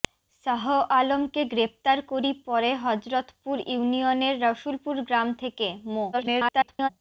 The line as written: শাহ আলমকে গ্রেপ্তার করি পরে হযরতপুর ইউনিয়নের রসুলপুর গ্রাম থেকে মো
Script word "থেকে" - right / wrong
right